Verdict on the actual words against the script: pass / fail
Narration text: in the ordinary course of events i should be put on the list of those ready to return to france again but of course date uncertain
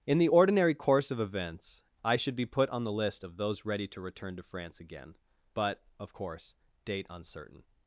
pass